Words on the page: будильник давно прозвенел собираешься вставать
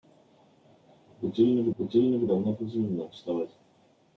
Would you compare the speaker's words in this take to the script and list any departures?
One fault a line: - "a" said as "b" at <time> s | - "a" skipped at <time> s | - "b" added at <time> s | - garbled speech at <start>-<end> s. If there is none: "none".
- "будильник" added at 1.8 s
- "собираешься" skipped at 3.1 s